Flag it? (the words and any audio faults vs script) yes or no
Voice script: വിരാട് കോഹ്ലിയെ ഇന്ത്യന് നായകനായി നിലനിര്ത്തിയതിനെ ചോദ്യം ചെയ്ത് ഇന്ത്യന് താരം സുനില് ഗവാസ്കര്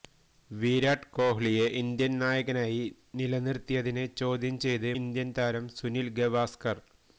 no